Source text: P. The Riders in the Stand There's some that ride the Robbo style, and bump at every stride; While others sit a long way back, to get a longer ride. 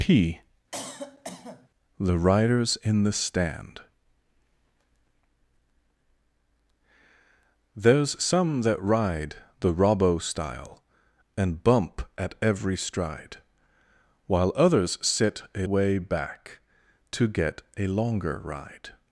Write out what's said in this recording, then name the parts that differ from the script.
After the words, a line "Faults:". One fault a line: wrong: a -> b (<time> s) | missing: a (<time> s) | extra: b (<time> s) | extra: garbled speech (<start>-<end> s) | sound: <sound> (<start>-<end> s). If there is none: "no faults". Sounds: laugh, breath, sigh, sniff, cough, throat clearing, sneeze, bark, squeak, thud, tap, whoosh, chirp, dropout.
P. The Riders in the Stand There's some that ride the Robbo style, and bump at every stride; While others sit a way back, to get a longer ride.
Faults:
sound: cough (0.7-1.7 s)
missing: long (15.7 s)